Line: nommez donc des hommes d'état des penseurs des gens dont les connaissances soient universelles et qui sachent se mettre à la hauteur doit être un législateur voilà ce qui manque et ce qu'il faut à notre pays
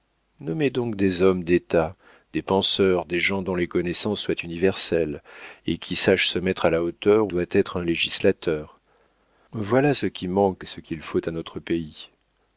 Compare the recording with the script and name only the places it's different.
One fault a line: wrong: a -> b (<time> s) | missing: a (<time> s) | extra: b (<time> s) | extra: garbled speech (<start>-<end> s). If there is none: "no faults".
no faults